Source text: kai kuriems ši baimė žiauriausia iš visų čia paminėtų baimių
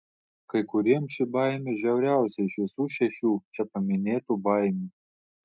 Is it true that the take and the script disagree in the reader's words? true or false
true